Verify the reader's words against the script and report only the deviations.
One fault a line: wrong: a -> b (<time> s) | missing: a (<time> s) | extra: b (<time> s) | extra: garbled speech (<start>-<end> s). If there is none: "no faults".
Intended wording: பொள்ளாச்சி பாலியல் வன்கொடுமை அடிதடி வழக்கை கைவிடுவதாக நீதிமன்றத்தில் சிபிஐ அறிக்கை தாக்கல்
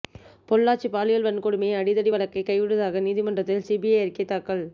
no faults